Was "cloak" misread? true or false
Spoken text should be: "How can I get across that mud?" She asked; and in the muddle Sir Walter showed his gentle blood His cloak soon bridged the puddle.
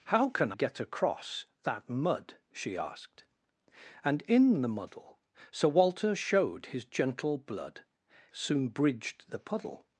true